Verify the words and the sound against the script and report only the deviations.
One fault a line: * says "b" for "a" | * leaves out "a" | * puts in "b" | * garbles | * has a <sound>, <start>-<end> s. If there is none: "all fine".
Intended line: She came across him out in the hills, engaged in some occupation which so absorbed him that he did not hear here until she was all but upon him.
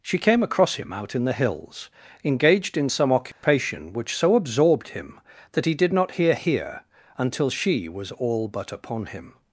* has a dropout, 3.3-3.4 s